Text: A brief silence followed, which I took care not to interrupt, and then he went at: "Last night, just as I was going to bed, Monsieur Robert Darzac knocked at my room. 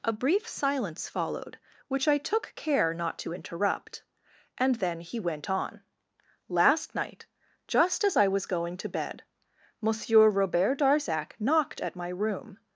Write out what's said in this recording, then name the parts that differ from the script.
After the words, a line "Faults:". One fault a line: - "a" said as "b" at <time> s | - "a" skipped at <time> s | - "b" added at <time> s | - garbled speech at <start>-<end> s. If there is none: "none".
A brief silence followed, which I took care not to interrupt, and then he went on: "Last night, just as I was going to bed, Monsieur Robert Darzac knocked at my room.
Faults:
- "at" said as "on" at 5.5 s